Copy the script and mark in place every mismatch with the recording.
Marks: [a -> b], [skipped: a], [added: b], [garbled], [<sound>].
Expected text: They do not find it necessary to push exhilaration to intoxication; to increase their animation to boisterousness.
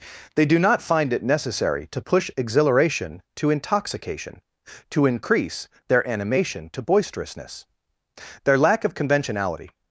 They do not find it necessary to push exhilaration to intoxication; to increase their animation to boisterousness. [added: Their lack of conventionality]